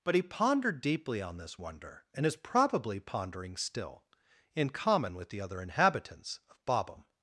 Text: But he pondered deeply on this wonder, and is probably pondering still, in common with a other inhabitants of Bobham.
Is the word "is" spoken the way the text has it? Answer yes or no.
yes